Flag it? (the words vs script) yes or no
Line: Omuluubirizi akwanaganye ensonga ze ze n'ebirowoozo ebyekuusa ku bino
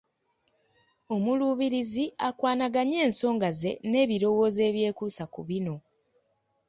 yes